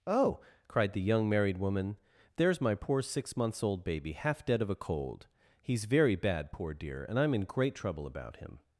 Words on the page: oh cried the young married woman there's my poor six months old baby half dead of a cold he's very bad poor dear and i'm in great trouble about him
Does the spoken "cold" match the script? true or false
true